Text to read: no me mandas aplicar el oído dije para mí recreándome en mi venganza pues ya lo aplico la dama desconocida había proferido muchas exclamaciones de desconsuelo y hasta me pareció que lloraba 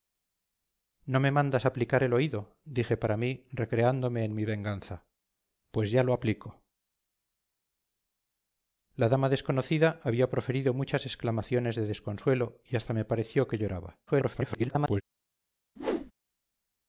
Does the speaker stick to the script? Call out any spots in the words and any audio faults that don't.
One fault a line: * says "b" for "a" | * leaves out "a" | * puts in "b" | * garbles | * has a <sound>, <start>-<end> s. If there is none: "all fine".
* garbles
* has a whoosh, 15.8-16.1 s